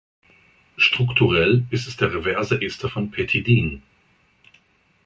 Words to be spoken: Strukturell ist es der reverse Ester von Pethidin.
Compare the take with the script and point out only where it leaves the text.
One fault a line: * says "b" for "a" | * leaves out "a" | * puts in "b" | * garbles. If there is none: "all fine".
all fine